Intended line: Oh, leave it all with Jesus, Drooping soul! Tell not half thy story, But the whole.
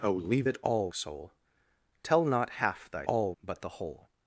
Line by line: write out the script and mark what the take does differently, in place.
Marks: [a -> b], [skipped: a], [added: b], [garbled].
Oh, leave it all [skipped: with Jesus, Drooping] soul! Tell not half thy [story, -> all] But the whole.